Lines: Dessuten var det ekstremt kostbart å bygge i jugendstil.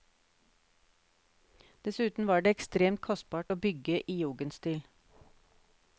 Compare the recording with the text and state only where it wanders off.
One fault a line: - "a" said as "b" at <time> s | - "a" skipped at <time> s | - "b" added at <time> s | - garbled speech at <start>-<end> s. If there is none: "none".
none